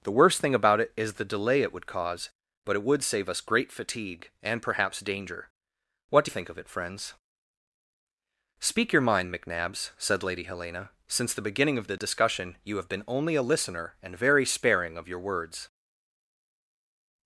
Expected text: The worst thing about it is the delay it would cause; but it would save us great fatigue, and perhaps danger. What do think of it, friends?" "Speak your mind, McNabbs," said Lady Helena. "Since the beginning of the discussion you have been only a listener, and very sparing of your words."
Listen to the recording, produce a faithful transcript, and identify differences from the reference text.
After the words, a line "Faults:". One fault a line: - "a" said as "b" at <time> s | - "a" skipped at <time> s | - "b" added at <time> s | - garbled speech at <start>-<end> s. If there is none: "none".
The worst thing about it is the delay it would cause; but it would save us great fatigue, and perhaps danger. What do think of it, friends?" "Speak your mind, McNabbs," said Lady Helena. "Since the beginning of the discussion you have been only a listener, and very sparing of your words."
Faults:
none